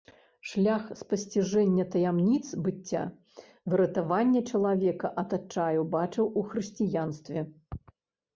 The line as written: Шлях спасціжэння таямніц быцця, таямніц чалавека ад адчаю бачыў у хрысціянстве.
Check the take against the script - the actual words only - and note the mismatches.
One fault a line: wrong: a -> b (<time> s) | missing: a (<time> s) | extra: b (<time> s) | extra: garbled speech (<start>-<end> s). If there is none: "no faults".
wrong: таямніц -> выратавання (3.8 s)